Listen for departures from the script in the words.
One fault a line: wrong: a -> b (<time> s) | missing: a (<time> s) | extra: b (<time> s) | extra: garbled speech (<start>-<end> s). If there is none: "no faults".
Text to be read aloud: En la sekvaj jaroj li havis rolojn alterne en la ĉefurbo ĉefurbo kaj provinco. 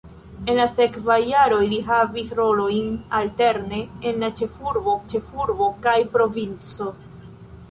no faults